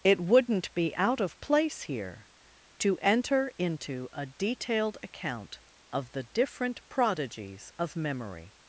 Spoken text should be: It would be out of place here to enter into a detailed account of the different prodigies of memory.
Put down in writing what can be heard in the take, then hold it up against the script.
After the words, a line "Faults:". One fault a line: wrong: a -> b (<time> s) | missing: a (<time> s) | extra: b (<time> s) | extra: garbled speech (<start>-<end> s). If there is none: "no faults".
It wouldn't be out of place here to enter into a detailed account of the different prodigies of memory.
Faults:
wrong: would -> wouldn't (0.2 s)